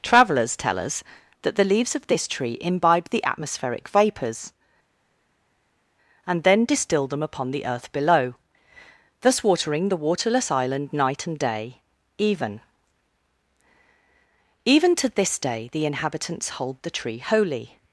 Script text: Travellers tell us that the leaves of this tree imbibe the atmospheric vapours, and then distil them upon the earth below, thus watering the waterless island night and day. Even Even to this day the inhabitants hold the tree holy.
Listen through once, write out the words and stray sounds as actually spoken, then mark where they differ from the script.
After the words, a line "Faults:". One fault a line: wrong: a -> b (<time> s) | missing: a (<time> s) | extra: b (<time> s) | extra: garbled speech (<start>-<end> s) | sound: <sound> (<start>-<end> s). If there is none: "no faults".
Travellers tell us that the leaves of this tree imbibe the atmospheric vapours, and then distil them upon the earth below, thus watering the waterless island night and day. Even Even to this day the inhabitants hold the tree holy.
Faults:
no faults